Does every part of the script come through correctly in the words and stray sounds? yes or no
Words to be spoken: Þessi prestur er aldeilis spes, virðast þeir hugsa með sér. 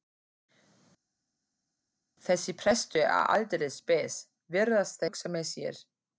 no